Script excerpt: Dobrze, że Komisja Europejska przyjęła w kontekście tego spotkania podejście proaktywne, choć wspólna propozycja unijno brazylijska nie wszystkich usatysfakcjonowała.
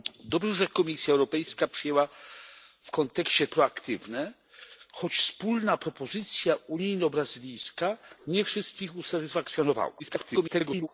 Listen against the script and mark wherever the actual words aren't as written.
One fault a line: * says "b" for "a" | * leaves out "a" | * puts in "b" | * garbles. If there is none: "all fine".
* leaves out "tego spotkania podejście"
* garbles